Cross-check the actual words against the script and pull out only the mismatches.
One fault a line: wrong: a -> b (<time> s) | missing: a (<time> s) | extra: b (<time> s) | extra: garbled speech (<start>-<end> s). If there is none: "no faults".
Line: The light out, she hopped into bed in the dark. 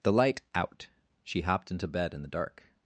no faults